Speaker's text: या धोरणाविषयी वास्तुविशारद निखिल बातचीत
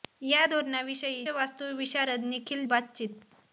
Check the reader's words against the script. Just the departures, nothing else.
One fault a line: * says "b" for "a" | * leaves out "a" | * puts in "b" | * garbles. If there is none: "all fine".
all fine